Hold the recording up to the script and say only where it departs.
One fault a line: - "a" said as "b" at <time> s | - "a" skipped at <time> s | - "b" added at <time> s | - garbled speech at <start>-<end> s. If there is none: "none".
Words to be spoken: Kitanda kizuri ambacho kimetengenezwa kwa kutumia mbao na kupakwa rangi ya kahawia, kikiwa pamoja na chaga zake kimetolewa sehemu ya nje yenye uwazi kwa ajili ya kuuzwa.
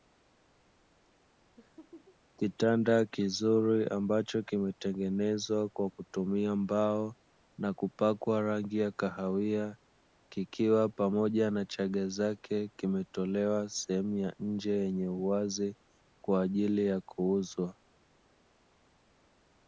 none